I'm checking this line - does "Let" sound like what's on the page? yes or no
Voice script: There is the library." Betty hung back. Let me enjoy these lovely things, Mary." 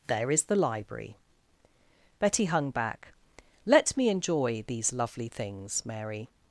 yes